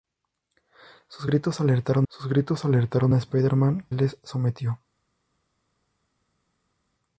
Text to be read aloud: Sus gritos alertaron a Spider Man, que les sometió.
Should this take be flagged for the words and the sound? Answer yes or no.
yes